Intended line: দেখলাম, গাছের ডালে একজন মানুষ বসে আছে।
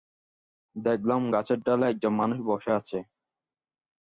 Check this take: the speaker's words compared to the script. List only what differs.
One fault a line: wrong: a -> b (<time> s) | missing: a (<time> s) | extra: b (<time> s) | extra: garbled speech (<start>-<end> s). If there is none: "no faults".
no faults